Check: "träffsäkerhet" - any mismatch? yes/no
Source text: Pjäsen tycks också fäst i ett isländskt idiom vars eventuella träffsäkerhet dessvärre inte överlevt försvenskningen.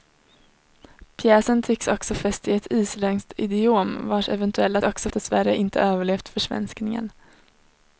yes